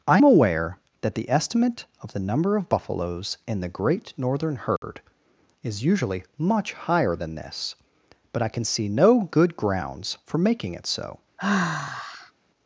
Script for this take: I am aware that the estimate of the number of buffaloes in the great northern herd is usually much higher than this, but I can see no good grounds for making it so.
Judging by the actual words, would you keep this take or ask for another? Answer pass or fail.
fail